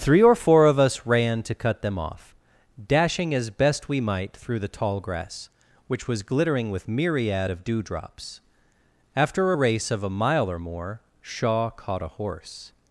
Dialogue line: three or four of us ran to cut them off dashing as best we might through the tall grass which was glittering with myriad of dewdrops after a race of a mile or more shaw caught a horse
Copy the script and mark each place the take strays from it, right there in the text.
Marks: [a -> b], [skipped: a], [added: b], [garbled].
three or four of us ran to cut them off dashing as best we might through the tall grass which was glittering with myriad of dewdrops after a race of a mile or more shaw caught a horse